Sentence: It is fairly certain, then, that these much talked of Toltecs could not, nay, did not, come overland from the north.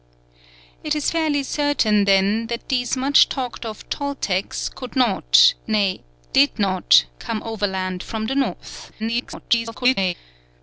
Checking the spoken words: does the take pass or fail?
fail